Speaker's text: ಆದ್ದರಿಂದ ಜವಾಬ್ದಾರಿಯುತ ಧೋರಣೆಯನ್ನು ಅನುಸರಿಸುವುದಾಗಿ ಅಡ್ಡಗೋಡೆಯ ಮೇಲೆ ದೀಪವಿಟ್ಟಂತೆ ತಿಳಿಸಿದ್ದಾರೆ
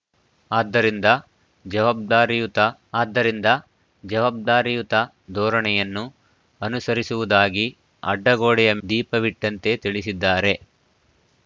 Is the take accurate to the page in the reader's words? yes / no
no